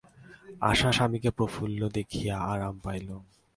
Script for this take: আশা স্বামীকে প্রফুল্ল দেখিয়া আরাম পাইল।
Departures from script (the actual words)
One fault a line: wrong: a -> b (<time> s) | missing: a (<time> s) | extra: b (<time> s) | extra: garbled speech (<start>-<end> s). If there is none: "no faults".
no faults